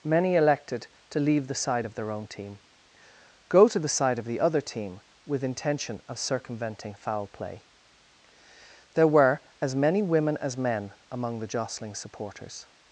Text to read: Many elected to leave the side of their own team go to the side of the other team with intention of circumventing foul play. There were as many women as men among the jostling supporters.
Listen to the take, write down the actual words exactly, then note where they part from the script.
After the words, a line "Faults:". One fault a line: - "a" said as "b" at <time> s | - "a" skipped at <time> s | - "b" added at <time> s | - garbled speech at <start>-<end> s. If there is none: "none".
Many elected to leave the side of their own team go to the side of the other team with intention of circumventing foul play. There were as many women as men among the jostling supporters.
Faults:
none